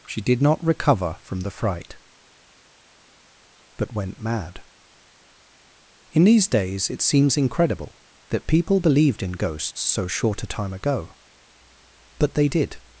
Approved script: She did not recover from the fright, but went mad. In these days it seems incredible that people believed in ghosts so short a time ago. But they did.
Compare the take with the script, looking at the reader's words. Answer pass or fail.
pass